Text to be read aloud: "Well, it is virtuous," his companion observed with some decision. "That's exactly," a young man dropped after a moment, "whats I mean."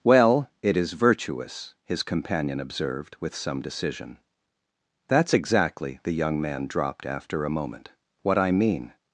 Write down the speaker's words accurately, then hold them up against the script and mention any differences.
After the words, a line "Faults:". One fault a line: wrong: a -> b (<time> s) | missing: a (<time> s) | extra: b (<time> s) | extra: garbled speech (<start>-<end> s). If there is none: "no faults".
"Well, it is virtuous," his companion observed with some decision. "That's exactly," the young man dropped after a moment, "what I mean."
Faults:
wrong: a -> the (6.0 s)
wrong: whats -> what (8.2 s)